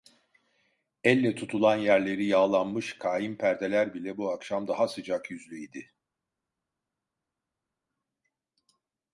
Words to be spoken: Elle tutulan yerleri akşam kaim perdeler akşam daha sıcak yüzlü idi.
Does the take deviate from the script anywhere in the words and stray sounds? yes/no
yes